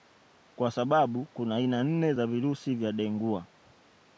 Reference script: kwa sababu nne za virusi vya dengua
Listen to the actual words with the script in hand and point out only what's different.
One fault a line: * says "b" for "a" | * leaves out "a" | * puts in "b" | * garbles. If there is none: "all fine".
* puts in "kuna aina"